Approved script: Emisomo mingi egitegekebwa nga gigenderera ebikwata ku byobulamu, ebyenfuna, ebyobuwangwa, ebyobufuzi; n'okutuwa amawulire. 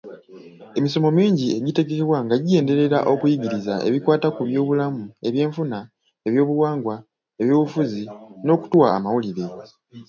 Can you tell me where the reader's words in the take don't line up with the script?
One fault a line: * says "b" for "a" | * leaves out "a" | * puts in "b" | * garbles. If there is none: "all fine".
* puts in "okuyigiriza"